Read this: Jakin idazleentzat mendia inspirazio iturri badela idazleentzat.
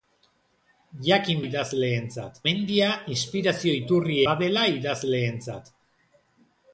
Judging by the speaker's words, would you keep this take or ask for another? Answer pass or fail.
pass